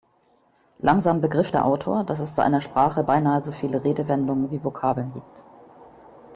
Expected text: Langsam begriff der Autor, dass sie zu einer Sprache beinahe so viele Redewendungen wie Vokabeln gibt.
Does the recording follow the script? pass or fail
fail